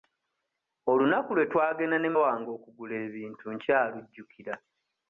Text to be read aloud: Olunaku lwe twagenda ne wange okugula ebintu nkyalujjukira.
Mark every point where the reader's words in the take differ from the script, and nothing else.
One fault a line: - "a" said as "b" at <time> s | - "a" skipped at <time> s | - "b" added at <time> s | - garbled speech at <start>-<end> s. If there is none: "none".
none